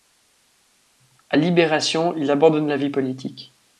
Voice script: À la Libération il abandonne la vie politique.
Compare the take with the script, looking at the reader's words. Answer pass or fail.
fail